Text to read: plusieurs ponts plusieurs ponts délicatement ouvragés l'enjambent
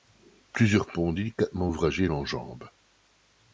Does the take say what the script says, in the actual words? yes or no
no